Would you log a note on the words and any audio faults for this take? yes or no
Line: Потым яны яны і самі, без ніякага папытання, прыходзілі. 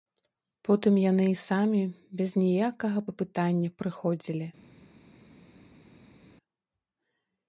yes